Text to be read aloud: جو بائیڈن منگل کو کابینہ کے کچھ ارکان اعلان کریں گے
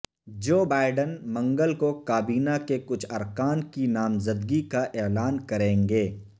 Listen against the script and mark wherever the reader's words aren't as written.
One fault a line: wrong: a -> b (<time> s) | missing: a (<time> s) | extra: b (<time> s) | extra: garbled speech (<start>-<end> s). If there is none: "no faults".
extra: کی نامزدگی کا (3.7 s)